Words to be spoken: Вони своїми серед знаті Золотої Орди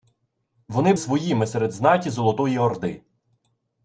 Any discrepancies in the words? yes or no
no